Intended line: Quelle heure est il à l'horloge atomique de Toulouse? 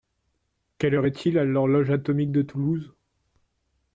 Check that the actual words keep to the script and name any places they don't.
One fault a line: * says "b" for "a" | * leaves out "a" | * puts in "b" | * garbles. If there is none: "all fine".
all fine